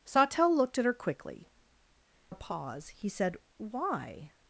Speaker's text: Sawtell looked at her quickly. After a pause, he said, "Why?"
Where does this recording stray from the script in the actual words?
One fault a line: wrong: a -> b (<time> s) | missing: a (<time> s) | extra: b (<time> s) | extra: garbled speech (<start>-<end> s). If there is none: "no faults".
missing: After (1.5 s)